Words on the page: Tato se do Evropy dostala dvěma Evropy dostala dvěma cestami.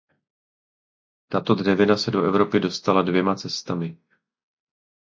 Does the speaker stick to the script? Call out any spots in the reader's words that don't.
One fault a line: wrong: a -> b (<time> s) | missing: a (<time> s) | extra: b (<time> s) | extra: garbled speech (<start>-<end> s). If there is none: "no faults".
extra: dřevina (1.6 s)
missing: Evropy dostala dvěma (3.4 s)